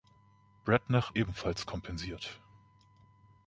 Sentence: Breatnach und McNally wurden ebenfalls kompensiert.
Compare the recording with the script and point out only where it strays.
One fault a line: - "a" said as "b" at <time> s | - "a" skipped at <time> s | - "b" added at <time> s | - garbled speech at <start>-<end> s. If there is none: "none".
- "und McNally wurden" skipped at 1.1 s